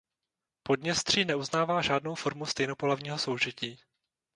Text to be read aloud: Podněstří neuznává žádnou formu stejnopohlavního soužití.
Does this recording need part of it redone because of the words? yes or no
no